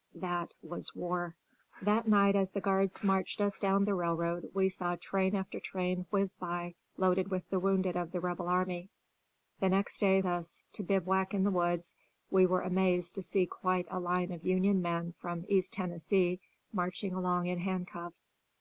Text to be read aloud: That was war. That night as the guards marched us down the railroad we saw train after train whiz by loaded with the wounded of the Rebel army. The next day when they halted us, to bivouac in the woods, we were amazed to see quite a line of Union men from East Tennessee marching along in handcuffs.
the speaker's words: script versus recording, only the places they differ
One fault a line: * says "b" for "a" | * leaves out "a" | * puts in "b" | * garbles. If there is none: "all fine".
* leaves out "when they halted"